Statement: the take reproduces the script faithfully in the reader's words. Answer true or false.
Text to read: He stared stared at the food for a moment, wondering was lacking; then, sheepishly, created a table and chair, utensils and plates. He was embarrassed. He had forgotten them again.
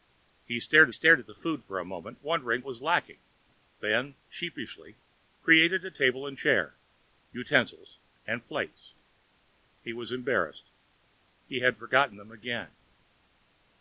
true